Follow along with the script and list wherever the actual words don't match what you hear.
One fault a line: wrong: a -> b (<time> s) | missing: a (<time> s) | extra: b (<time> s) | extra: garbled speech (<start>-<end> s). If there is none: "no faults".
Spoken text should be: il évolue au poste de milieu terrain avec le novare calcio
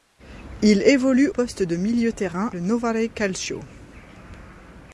missing: au (1.3 s)
missing: avec (2.5 s)